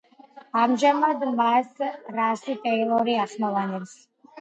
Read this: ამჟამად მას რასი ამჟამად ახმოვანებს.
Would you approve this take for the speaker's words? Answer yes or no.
no